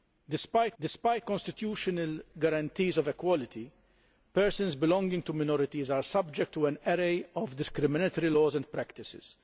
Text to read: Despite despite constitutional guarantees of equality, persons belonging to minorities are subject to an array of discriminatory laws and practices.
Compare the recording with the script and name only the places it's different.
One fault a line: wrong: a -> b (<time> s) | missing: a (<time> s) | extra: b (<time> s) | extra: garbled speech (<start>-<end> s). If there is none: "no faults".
no faults